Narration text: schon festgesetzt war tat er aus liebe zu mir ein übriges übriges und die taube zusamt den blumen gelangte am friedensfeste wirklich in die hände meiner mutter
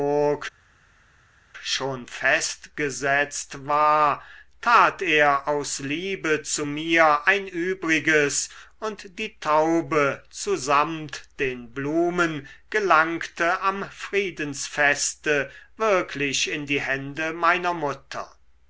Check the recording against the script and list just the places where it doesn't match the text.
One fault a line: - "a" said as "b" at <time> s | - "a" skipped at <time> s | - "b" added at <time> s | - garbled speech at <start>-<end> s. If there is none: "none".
- "übriges" skipped at 8.5 s